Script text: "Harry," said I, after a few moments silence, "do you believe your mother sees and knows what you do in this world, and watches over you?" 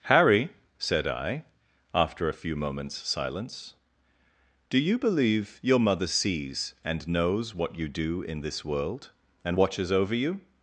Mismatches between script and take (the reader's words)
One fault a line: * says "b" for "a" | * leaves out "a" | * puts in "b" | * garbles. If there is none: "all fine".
all fine